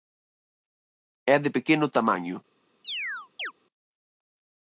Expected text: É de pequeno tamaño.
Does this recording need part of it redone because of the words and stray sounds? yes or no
yes